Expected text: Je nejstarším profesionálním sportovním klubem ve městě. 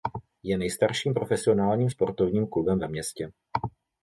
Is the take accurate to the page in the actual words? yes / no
yes